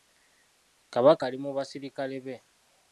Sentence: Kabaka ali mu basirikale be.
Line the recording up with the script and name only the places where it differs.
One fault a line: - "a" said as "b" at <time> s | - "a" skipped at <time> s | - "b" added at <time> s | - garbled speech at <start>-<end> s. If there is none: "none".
none